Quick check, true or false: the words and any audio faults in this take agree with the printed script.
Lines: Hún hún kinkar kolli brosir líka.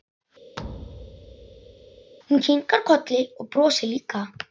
false